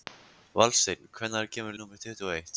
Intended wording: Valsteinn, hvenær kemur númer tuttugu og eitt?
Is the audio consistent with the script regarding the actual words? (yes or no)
yes